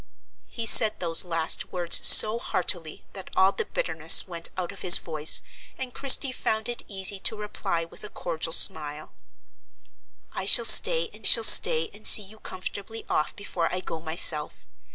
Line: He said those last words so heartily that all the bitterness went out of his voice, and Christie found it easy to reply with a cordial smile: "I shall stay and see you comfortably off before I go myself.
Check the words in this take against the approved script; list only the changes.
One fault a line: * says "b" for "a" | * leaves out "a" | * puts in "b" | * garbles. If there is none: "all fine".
* puts in "shall stay and"